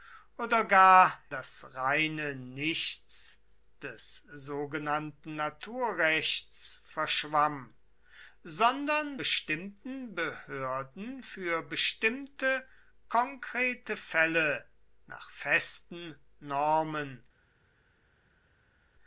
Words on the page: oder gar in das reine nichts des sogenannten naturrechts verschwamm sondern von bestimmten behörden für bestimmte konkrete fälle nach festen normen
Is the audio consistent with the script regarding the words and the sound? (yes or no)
no